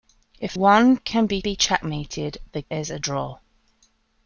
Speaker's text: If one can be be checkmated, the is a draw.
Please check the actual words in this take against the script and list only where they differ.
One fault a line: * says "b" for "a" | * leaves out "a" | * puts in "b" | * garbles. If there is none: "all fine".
all fine